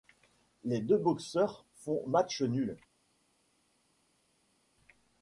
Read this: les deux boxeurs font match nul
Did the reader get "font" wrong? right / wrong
right